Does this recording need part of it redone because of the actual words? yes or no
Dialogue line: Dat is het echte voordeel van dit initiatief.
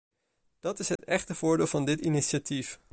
no